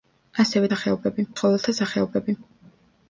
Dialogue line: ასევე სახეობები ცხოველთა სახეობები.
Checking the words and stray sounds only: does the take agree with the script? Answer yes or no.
yes